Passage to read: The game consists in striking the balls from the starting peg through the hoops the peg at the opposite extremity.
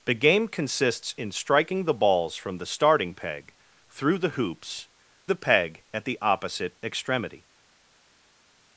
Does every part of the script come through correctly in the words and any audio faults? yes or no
yes